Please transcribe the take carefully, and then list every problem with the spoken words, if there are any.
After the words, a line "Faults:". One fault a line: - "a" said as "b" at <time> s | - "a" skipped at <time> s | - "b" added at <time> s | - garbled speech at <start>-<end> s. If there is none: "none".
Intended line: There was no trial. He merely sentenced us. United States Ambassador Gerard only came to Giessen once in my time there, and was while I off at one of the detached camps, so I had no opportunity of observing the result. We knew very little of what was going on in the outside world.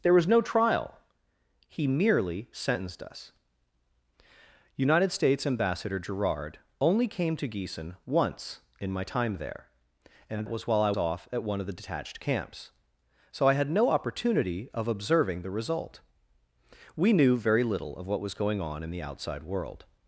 There was no trial. He merely sentenced us. United States Ambassador Gerard only came to Giessen once in my time there, and was while I off at one of the detached camps, so I had no opportunity of observing the result. We knew very little of what was going on in the outside world.
Faults:
none